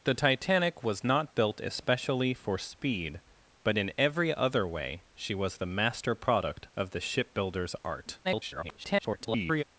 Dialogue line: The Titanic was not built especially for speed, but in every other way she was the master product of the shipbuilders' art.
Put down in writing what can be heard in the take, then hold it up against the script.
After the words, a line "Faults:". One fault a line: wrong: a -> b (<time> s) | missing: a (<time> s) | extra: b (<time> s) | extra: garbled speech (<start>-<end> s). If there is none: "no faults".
The Titanic was not built especially for speed, but in every other way she was the master product of the shipbuilders' art. [garbled]
Faults:
extra: garbled speech (8.2-9.6 s)